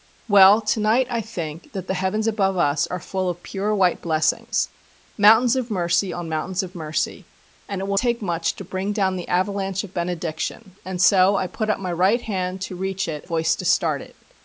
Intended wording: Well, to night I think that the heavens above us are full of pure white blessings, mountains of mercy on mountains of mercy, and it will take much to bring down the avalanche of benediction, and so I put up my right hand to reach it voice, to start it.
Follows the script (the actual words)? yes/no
yes